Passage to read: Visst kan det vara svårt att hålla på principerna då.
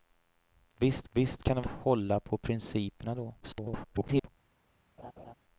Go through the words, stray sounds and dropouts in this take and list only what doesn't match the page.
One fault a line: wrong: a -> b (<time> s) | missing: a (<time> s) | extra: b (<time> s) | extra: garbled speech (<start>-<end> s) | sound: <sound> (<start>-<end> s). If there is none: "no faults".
extra: visst (1.1 s)
missing: vara svårt att (1.6 s)
extra: garbled speech (3.4-4.3 s)
sound: laugh (5.0-5.3 s)